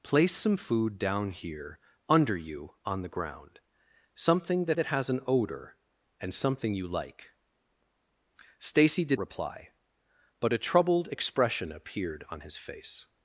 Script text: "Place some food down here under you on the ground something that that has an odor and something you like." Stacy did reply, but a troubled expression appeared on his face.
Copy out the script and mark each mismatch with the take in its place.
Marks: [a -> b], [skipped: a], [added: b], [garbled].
"Place some food down here under you on the ground something that that has an odor and something you like." Stacy did reply, but a troubled expression appeared on his face.